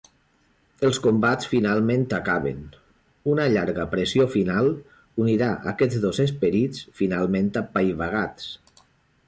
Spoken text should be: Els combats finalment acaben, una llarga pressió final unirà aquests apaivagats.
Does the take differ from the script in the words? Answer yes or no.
yes